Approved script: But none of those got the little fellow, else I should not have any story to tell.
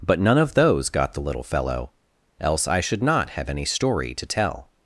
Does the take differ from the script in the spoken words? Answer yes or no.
no